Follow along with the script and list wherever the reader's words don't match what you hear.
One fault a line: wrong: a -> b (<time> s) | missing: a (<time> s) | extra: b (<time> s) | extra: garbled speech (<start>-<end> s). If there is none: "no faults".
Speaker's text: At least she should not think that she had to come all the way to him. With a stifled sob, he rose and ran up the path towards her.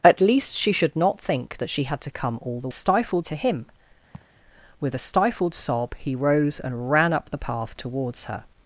wrong: way -> stifled (2.7 s)